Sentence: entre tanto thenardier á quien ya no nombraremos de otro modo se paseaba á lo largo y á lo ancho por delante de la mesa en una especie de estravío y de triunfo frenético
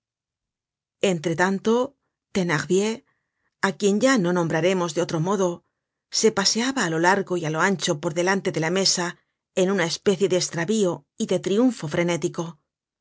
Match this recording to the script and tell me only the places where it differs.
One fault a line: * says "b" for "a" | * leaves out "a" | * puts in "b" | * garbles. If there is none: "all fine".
all fine